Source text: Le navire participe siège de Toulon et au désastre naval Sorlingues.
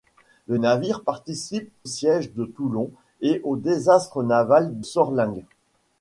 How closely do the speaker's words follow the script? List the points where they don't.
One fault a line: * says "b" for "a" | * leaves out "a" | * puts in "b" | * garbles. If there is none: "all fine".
all fine